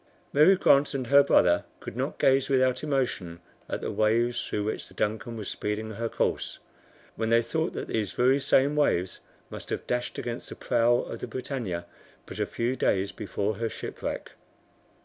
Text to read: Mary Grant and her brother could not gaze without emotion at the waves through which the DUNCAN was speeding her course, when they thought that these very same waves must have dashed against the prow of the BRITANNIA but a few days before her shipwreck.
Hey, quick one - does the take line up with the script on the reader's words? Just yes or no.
yes